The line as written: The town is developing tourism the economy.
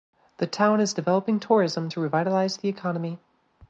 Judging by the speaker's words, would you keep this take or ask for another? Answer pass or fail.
fail